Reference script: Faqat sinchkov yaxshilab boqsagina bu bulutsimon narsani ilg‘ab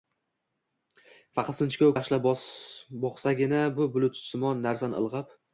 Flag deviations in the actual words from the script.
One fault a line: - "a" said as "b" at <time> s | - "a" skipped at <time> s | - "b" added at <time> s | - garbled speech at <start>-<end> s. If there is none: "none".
none